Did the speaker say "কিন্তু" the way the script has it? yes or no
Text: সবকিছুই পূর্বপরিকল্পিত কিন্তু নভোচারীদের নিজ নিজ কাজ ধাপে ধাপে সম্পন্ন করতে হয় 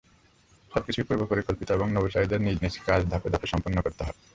no